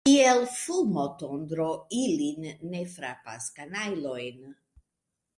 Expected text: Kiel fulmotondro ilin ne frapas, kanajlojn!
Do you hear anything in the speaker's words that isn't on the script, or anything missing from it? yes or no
no